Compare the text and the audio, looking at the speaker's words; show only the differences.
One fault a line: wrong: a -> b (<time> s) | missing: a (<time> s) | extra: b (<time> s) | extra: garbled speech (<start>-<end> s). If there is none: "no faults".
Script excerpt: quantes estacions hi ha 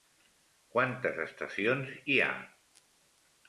no faults